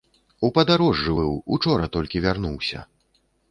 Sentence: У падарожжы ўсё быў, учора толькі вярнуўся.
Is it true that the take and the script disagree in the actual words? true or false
true